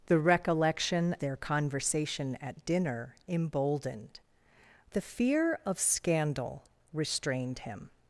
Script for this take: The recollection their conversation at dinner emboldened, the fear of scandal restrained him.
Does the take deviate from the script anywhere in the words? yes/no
no